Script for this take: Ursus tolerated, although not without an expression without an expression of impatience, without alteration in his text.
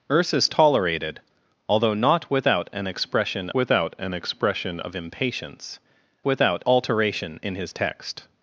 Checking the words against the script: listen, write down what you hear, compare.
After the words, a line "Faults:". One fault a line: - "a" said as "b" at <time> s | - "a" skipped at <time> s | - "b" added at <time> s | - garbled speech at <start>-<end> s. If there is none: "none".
Ursus tolerated, although not without an expression without an expression of impatience, without alteration in his text.
Faults:
none